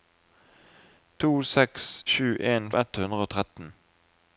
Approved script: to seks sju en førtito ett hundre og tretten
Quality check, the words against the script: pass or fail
fail